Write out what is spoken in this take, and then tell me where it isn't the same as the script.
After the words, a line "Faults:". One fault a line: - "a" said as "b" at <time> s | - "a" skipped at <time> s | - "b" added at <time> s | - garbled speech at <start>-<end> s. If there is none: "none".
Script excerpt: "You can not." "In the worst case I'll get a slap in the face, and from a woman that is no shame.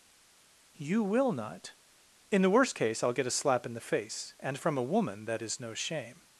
"You will not." "In the worst case I'll get a slap in the face, and from a woman that is no shame.
Faults:
- "can" said as "will" at 1.0 s